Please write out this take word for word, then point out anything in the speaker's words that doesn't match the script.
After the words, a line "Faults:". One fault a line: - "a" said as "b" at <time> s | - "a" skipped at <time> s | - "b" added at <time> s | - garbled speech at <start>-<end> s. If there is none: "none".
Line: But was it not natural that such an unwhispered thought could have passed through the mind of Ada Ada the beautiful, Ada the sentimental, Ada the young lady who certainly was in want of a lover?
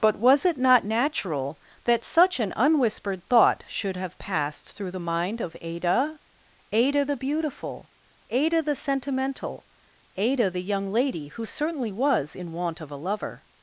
But was it not natural that such an unwhispered thought should have passed through the mind of Ada Ada the beautiful, Ada the sentimental, Ada the young lady who certainly was in want of a lover?
Faults:
- "could" said as "should" at 3.7 s